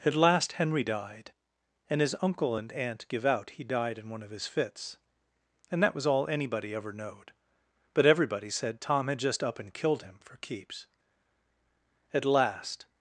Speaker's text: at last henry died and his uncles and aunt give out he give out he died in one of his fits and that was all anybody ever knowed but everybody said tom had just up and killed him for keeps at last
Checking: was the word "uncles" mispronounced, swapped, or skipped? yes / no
yes